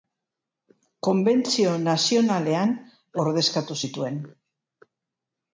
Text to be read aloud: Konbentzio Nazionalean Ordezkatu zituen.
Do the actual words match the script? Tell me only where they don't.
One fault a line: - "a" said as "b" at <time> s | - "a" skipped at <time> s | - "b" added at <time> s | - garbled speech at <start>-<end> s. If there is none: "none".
none